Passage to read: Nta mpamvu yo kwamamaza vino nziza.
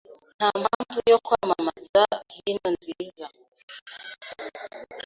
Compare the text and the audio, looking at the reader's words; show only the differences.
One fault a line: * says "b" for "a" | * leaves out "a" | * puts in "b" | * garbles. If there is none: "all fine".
all fine